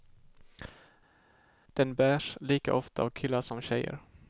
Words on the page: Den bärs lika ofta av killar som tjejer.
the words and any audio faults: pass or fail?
pass